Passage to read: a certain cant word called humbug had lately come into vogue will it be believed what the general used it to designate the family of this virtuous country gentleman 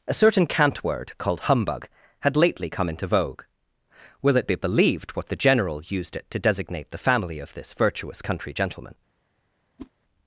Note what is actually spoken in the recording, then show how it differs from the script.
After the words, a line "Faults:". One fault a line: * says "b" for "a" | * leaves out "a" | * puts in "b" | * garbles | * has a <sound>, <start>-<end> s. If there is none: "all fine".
a certain cant word called humbug had lately come into vogue will it be believed what the general used it to designate the family of this virtuous country gentleman
Faults:
* has a whoosh, 9.8-9.9 s